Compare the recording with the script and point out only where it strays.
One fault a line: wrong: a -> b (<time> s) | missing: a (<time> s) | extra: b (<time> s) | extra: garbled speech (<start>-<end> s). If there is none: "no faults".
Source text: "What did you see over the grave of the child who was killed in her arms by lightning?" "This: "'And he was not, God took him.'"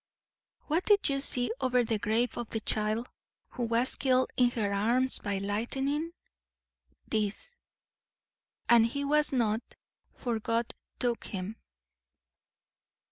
extra: for (10.1 s)